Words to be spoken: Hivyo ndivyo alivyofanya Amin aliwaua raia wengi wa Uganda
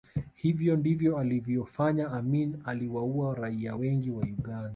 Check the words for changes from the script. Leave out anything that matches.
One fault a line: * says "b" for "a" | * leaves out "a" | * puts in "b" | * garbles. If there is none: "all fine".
all fine